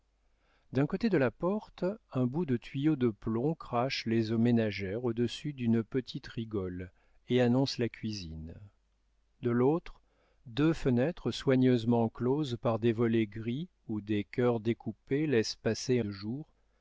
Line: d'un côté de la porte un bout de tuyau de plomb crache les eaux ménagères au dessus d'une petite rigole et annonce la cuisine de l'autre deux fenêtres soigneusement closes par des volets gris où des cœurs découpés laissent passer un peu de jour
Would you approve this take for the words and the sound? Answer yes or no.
no